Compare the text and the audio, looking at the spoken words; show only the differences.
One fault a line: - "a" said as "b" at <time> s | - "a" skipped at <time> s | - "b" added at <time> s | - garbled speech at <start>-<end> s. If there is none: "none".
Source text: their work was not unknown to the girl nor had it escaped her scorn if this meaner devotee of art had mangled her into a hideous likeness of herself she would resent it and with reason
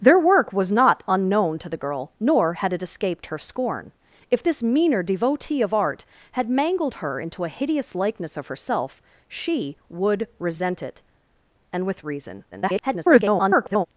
- garbled speech at 12.5-13.9 s